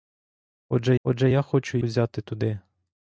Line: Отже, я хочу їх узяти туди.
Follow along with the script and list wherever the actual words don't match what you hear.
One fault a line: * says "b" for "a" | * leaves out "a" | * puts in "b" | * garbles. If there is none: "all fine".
* puts in "отже"
* leaves out "їх"